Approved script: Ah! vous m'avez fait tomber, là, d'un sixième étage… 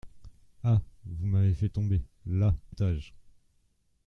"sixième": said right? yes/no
no